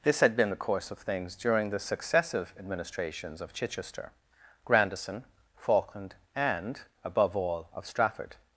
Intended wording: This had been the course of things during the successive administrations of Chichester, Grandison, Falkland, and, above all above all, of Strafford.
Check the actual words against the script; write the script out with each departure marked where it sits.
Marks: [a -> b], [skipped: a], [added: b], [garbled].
This had been the course of things during the successive administrations of Chichester, Grandison, Falkland, and, above all [skipped: above all,] of Strafford.